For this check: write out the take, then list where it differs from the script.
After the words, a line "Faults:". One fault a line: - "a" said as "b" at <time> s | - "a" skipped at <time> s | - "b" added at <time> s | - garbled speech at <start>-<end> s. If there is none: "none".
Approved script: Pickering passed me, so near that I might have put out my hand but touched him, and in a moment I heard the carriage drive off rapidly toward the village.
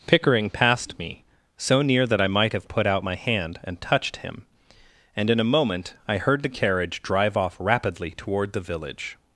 Pickering passed me, so near that I might have put out my hand and touched him, and in a moment I heard the carriage drive off rapidly toward the village.
Faults:
- "but" said as "and" at 3.6 s